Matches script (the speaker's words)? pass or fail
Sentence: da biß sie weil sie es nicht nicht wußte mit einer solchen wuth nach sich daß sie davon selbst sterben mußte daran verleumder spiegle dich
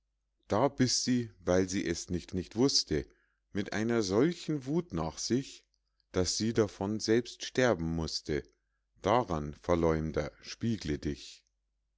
pass